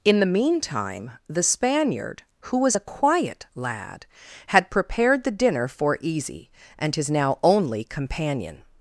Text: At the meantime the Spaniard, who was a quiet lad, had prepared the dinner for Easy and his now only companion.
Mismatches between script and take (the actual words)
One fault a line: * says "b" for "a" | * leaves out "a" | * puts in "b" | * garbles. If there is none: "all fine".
* says "In" for "At"